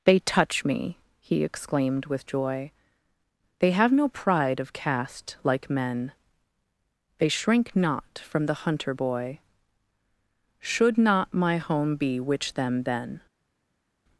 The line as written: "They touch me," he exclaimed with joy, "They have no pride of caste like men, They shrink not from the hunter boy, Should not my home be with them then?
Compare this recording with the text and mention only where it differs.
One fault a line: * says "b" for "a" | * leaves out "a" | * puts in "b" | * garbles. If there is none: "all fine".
* says "which" for "with"